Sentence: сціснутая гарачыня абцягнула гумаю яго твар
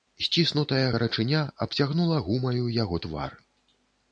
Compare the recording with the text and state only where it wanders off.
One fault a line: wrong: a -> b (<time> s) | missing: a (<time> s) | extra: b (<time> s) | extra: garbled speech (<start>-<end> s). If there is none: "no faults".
no faults